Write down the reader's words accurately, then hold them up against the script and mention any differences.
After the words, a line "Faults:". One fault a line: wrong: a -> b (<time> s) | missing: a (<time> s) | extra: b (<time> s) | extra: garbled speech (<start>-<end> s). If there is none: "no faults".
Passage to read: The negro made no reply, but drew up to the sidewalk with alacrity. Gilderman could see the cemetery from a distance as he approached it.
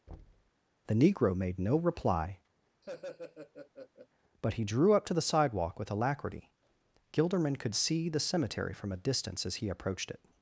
The negro made no reply, but he drew up to the sidewalk with alacrity. Gilderman could see the cemetery from a distance as he approached it.
Faults:
extra: he (4.5 s)